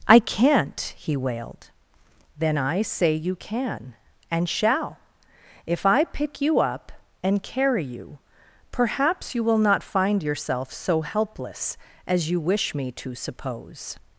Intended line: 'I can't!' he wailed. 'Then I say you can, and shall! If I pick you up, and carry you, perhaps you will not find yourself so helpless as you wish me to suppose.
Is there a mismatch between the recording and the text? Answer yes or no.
no